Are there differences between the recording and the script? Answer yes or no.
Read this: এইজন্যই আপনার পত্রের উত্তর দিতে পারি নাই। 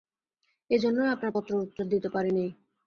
no